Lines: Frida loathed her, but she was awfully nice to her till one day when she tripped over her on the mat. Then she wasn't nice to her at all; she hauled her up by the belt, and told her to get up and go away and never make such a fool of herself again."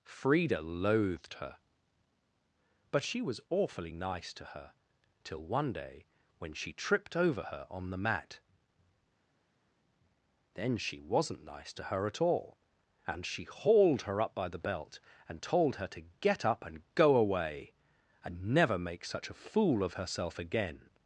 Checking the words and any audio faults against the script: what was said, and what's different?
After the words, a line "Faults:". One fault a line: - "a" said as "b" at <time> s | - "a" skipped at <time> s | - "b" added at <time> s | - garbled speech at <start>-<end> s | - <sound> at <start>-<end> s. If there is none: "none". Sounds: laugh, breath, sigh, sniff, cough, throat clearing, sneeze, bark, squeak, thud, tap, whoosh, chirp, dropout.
Frida loathed her, but she was awfully nice to her till one day when she tripped over her on the mat. Then she wasn't nice to her at all; and she hauled her up by the belt, and told her to get up and go away and never make such a fool of herself again."
Faults:
- "and" added at 13.1 s